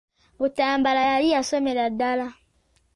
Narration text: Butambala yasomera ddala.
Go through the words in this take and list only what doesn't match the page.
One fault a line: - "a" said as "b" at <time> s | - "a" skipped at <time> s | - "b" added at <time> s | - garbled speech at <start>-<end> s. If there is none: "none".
- "yali" added at 1.1 s